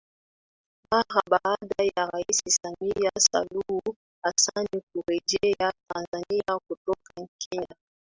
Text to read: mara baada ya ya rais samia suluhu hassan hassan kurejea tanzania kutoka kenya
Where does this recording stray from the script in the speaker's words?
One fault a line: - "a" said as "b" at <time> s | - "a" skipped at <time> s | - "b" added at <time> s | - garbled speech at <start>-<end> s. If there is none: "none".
- "ya" skipped at 2.1 s
- "hassan" skipped at 4.7 s